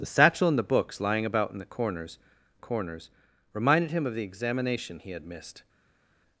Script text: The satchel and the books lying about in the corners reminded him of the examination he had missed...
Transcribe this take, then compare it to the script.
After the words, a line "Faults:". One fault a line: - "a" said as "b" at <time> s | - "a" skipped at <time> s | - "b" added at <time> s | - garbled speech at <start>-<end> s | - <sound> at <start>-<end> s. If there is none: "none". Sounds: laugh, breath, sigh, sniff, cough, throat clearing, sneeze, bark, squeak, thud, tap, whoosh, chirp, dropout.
The satchel and the books lying about in the corners corners reminded him of the examination he had missed...
Faults:
- "corners" added at 2.6 s